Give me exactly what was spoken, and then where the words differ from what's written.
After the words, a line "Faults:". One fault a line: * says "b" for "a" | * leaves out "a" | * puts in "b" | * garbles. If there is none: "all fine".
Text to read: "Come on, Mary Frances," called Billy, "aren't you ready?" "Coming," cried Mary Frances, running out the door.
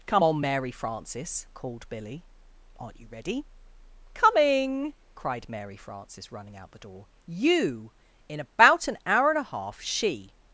"Come on, Mary Frances," called Billy, "aren't you ready?" "Coming," cried Mary Frances, running out the door. you: In about an hour and a half she
Faults:
* puts in "you In about an hour and a half she"